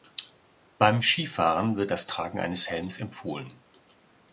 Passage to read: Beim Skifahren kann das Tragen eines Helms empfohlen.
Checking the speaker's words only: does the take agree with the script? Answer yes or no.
no